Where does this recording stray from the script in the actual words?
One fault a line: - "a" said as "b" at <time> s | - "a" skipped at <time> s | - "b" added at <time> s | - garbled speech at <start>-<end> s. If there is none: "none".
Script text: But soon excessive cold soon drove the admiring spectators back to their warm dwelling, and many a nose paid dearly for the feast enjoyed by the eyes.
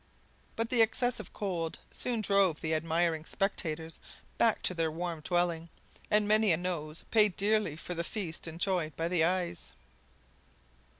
- "soon" said as "the" at 0.7 s